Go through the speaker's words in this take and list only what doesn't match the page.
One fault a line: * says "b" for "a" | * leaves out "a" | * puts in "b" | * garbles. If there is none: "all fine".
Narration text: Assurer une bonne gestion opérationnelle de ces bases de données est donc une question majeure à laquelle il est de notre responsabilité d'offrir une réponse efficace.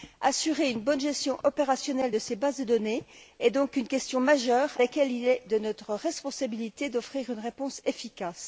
* leaves out "à"